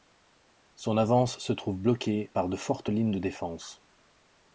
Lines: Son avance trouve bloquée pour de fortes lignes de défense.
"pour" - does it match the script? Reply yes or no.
no